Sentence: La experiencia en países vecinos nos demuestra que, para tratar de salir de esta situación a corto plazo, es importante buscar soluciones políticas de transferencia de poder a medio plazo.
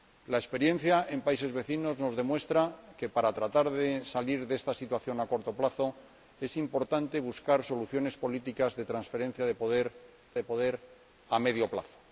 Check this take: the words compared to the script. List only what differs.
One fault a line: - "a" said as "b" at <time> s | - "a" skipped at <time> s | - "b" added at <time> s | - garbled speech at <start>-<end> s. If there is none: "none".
- "de poder" added at 10.3 s